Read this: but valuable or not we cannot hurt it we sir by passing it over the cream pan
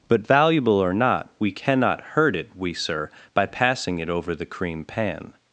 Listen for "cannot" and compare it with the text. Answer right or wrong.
right